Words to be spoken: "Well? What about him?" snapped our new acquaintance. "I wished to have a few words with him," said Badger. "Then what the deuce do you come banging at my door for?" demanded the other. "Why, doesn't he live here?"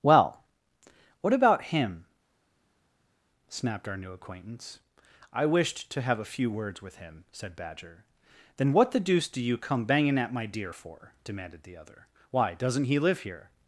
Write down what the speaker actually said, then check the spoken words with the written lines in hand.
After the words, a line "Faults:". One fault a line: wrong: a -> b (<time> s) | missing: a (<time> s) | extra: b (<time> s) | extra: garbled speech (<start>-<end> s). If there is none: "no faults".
"Well? What about him?" snapped our new acquaintance. "I wished to have a few words with him," said Badger. "Then what the deuce do you come banging at my deer for?" demanded the other. "Why, doesn't he live here?"
Faults:
wrong: door -> deer (10.5 s)